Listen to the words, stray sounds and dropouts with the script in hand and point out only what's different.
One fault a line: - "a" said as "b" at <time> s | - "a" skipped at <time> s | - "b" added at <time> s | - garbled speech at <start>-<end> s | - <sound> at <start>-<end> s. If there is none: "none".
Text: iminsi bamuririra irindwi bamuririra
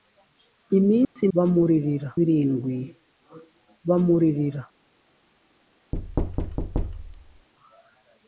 - dropout at 1.0-1.2 s
- thud at 5.9-7.5 s